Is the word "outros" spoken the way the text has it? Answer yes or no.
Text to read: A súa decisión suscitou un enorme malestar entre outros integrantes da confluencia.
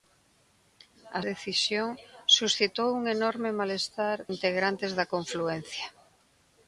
no